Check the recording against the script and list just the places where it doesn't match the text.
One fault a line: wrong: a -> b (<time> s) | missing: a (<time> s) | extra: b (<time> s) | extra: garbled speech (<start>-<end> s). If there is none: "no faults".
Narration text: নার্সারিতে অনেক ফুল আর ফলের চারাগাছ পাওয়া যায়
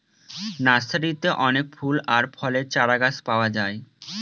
no faults